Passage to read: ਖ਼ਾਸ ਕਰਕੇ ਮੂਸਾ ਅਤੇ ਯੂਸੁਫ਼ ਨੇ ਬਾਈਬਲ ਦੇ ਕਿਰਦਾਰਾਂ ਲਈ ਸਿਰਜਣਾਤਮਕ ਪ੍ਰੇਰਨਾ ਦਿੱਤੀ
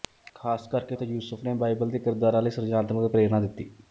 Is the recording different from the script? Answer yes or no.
yes